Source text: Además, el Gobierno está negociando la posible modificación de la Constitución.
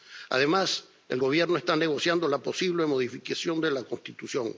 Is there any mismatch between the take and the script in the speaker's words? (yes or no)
no